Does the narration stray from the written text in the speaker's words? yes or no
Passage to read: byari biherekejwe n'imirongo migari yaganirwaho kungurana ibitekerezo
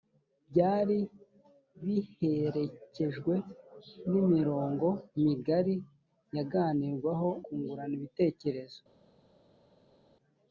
no